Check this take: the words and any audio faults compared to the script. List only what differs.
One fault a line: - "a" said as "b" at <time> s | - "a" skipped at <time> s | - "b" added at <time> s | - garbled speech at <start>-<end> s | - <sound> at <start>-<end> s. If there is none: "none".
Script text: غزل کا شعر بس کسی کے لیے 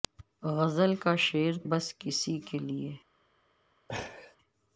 - laugh at 3.9-4.4 s